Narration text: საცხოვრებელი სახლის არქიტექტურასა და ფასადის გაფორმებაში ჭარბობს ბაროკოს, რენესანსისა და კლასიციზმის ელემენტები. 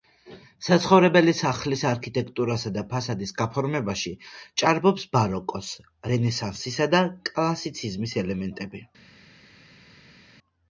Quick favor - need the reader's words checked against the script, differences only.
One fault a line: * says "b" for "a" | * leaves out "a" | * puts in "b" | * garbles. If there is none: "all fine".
all fine